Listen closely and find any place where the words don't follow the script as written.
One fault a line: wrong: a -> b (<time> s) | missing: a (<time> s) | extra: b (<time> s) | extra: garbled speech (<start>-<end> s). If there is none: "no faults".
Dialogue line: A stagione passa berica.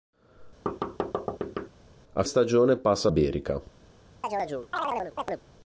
no faults